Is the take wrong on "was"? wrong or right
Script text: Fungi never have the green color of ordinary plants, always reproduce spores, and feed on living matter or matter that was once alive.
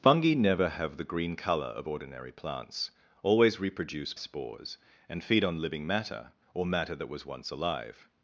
right